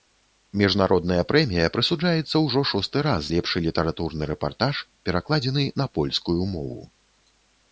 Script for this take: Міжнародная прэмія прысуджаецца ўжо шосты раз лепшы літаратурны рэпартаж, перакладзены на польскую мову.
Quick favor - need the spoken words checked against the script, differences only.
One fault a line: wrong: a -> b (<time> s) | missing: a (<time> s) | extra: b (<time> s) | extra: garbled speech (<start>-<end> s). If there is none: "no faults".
no faults